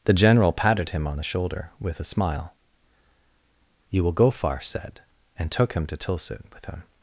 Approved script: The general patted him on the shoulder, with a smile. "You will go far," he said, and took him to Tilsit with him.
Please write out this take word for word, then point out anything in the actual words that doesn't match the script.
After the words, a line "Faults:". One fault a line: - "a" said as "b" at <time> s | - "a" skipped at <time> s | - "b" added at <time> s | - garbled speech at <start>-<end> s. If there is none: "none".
The general patted him on the shoulder, with a smile. "You will go far," said, and took him to Tilsit with him.
Faults:
- "he" skipped at 4.6 s